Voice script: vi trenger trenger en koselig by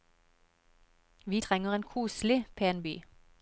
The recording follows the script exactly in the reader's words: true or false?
false